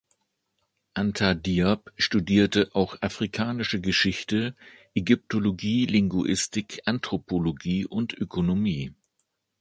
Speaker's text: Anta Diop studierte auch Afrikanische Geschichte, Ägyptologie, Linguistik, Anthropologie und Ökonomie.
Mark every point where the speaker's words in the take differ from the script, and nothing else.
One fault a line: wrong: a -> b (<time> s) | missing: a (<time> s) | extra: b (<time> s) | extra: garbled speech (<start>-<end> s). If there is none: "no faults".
no faults